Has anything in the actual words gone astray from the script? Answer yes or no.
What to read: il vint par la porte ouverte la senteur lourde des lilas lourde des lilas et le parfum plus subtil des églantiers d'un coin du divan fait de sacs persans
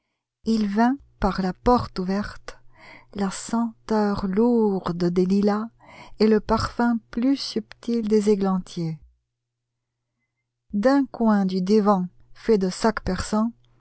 yes